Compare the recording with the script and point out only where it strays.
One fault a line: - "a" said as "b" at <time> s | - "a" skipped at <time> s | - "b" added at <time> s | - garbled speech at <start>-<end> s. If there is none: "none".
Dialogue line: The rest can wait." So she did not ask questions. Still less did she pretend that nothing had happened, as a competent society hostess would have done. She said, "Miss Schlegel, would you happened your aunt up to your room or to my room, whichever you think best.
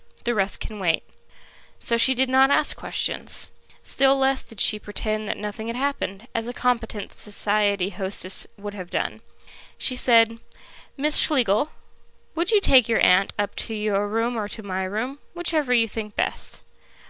- "happened" said as "take" at 12.6 s